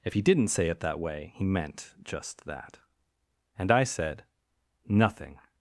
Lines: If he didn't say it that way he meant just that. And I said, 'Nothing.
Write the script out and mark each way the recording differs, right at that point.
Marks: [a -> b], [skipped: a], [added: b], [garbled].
If he didn't say it that way he meant just that. And I said, 'Nothing.